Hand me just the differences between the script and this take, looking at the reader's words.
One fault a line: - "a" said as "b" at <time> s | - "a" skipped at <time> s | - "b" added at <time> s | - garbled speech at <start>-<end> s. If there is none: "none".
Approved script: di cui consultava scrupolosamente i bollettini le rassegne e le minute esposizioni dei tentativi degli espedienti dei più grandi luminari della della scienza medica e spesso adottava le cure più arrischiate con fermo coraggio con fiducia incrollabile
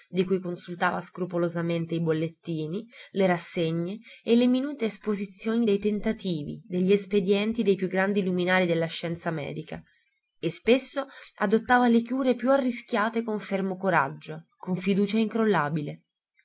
- "della" skipped at 8.9 s